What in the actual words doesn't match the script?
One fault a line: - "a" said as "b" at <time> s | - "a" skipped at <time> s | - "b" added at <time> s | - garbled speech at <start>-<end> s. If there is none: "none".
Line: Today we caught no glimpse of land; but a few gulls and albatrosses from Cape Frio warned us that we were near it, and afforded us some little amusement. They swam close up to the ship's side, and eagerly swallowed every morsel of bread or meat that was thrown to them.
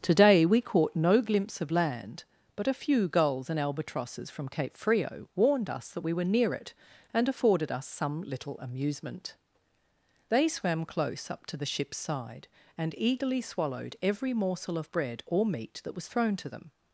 none